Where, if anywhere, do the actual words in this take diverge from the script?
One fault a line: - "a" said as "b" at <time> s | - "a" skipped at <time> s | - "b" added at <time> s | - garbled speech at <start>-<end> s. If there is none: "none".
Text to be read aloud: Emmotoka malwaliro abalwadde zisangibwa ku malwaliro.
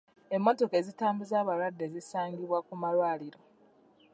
- "malwaliro" said as "ezitambuza" at 0.8 s